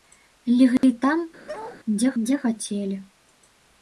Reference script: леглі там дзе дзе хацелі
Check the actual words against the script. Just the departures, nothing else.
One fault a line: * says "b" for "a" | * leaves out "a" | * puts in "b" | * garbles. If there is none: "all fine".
all fine